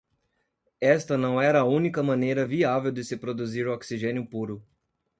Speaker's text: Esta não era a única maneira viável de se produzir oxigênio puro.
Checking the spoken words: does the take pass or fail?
pass